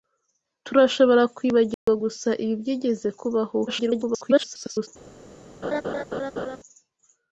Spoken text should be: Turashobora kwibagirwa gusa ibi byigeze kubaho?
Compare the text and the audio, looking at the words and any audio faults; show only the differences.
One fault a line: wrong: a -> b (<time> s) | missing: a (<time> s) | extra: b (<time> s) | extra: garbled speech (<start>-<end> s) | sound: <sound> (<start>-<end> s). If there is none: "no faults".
sound: dropout (1.7-1.9 s)
extra: garbled speech (3.7-4.9 s)
sound: laugh (5.6-6.6 s)